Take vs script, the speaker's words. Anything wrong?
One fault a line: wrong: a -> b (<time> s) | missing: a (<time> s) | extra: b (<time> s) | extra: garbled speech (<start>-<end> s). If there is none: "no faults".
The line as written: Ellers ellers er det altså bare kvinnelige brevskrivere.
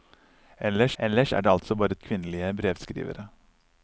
no faults